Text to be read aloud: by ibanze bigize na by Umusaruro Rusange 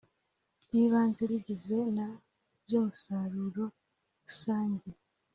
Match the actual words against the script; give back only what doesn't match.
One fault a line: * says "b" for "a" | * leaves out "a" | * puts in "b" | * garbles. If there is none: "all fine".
all fine